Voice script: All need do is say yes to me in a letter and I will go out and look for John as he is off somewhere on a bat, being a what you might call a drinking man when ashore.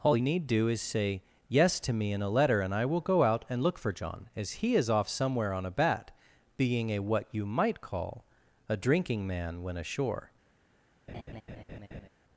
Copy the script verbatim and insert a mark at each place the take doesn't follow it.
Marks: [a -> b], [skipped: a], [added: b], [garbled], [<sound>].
All need do is say yes to me in a letter and I will go out and look for John as he is off somewhere on a bat, being a what you might call a drinking man when ashore. [laugh]